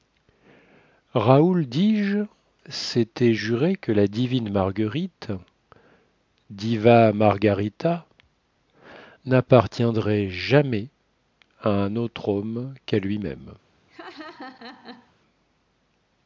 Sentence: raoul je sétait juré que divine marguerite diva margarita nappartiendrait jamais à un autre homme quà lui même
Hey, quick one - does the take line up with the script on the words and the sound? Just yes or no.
no